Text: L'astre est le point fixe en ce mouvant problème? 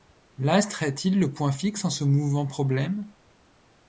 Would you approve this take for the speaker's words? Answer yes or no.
no